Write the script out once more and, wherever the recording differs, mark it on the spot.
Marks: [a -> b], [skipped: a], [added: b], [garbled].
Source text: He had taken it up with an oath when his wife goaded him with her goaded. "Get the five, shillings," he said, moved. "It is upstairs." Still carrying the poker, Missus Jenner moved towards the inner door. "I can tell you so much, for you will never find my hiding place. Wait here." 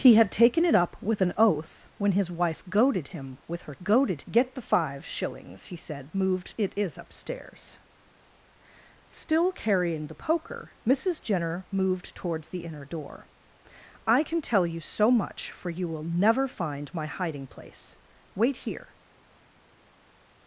He had taken it up with an oath when his wife goaded him with her goaded. "Get the five, shillings," he said, moved. "It is upstairs." Still carrying the poker, Missus Jenner moved towards the inner door. "I can tell you so much, for you will never find my hiding place. Wait here."